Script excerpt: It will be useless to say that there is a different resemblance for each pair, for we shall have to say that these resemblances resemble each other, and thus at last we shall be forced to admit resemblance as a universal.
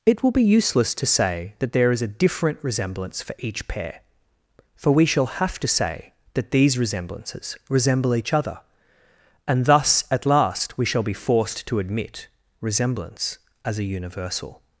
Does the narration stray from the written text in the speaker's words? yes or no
no